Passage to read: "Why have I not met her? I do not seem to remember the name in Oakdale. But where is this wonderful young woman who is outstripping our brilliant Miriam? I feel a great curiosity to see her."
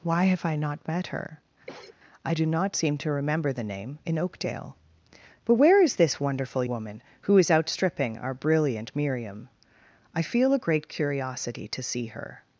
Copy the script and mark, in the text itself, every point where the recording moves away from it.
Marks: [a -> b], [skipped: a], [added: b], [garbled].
"Why have I not met her? I do not seem to remember the name in Oakdale. But where is this wonderful [skipped: young] woman who is outstripping our brilliant Miriam? I feel a great curiosity to see her."